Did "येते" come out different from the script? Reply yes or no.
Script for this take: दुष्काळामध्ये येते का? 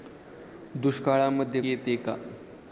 no